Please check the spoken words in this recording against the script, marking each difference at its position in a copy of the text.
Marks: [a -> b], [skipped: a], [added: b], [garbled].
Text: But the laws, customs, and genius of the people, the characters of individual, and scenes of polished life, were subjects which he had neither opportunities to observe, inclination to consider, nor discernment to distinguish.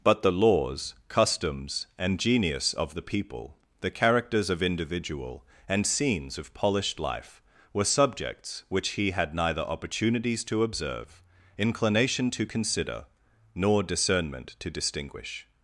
But the laws, customs, and genius of the people, the characters of individual, and scenes of polished life, were subjects which he had neither opportunities to observe, inclination to consider, nor discernment to distinguish.